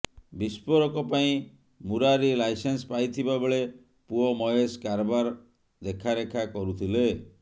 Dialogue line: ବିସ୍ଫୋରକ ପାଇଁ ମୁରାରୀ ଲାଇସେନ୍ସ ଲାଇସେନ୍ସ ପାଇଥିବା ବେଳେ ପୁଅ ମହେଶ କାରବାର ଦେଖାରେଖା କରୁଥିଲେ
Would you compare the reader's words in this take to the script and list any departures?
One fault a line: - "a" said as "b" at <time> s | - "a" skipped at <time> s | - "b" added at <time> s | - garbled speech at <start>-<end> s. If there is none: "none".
- "ଲାଇସେନ୍ସ" skipped at 2.9 s